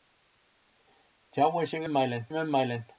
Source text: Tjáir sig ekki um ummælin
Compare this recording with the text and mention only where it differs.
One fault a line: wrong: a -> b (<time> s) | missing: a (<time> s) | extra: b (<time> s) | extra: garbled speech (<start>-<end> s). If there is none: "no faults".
wrong: ekki -> ummælin (1.8 s)